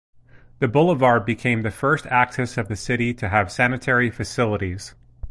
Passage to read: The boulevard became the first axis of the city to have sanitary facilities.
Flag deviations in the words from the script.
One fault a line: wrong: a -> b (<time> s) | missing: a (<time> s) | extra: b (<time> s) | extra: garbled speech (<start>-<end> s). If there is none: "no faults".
no faults